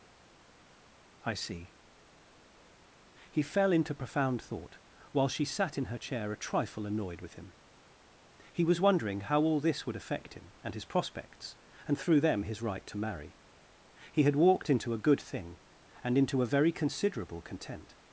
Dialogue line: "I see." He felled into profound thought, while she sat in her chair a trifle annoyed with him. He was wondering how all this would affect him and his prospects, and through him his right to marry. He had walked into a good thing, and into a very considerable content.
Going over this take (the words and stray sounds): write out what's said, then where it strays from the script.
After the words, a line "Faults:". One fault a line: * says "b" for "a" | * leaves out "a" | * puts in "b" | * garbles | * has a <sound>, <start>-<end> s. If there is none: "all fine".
"I see." He fell into profound thought, while she sat in her chair a trifle annoyed with him. He was wondering how all this would affect him and his prospects, and through them his right to marry. He had walked into a good thing, and into a very considerable content.
Faults:
* says "fell" for "felled"
* says "them" for "him"